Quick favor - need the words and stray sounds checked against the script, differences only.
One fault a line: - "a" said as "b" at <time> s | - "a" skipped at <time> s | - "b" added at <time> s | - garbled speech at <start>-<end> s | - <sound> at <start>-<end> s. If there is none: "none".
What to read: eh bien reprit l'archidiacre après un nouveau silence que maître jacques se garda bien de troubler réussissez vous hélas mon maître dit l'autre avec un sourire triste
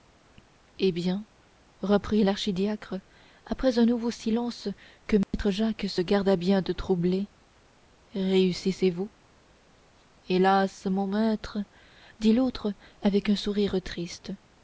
- dropout at 5.2-5.3 s